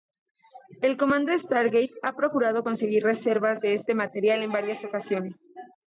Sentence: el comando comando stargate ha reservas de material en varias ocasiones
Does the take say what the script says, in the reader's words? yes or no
no